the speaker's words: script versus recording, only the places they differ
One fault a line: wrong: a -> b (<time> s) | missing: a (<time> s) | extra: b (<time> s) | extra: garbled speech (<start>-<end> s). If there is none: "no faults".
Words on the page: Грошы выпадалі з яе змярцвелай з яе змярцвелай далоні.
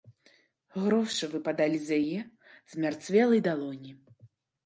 missing: з яе змярцвелай (3.4 s)